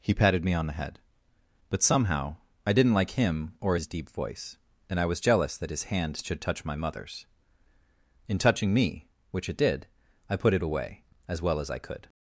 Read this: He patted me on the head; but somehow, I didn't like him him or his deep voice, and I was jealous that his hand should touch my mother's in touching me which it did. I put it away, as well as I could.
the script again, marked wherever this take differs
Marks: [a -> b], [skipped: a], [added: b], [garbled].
He patted me on the head; but somehow, I didn't like him [skipped: him] or his deep voice, and I was jealous that his hand should touch my mother's in touching me which it did. I put it away, as well as I could.